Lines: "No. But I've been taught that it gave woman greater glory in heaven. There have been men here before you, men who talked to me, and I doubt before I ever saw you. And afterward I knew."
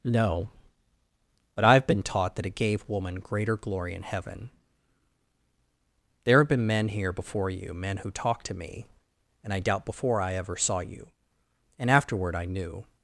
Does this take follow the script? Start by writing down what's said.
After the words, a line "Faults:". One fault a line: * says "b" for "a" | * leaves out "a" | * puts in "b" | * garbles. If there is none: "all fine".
"No. But I've been taught that it gave woman greater glory in heaven. There have been men here before you, men who talked to me, and I doubt before I ever saw you. And afterward I knew."
Faults:
all fine